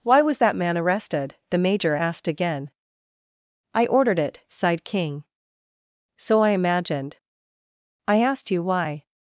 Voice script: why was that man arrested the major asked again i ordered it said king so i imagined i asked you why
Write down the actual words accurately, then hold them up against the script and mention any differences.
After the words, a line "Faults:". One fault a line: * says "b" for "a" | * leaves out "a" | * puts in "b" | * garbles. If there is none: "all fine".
why was that man arrested the major asked again i ordered it sighed king so i imagined i asked you why
Faults:
* says "sighed" for "said"